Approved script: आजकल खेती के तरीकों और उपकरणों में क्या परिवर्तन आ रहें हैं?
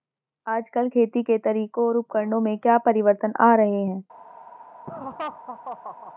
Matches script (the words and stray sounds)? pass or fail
fail